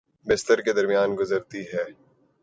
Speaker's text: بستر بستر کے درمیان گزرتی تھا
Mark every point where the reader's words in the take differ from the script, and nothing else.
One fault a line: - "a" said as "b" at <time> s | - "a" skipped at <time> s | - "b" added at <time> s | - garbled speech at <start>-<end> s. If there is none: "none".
- "بستر" skipped at 0.6 s
- "تھا" said as "ہے" at 1.7 s